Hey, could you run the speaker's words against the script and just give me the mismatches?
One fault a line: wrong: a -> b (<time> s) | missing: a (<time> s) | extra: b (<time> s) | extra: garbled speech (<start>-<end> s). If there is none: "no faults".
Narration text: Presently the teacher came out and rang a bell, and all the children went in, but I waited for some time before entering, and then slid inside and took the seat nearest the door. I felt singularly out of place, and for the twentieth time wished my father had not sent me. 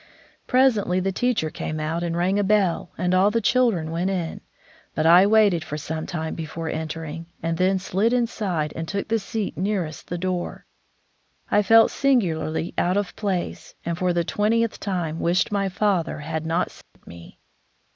no faults